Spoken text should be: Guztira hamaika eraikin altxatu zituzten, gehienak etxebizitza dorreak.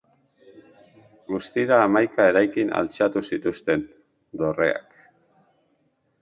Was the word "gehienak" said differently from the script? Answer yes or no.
yes